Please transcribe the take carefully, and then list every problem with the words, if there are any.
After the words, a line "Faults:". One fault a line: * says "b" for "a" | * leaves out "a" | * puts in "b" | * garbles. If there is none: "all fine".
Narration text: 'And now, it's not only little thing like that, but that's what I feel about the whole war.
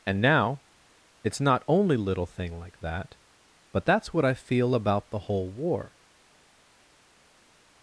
'And now, it's not only little thing like that, but that's what I feel about the whole war.
Faults:
all fine